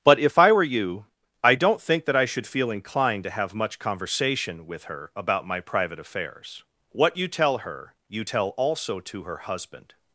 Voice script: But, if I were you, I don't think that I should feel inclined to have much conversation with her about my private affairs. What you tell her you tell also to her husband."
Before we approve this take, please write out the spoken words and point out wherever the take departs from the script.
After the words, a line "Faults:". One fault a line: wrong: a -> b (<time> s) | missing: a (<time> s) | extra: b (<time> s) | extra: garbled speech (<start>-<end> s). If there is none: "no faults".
But, if I were you, I don't think that I should feel inclined to have much conversation with her about my private affairs. What you tell her you tell also to her husband."
Faults:
no faults